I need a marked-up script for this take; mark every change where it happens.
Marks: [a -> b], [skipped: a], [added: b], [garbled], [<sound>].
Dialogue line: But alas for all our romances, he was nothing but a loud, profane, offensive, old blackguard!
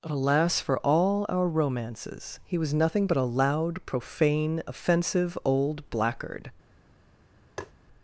[skipped: But] alas for all our romances, he was nothing but a loud, profane, offensive, old blackguard! [tap]